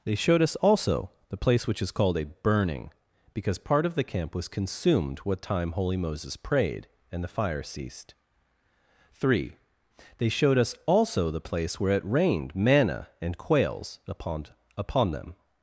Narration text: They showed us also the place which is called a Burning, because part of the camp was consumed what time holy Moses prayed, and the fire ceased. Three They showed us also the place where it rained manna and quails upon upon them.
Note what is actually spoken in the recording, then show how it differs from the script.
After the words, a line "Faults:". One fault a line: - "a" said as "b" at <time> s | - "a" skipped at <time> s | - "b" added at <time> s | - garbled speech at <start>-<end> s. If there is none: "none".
They showed us also the place which is called a Burning, because part of the camp was consumed what time holy Moses prayed, and the fire ceased. Three They showed us also the place where it rained manna and quails upon upon them.
Faults:
none